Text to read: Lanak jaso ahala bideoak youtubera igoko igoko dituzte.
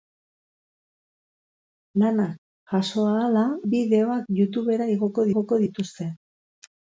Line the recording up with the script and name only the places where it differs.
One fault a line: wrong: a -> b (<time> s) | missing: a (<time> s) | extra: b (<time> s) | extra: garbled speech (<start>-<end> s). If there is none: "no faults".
no faults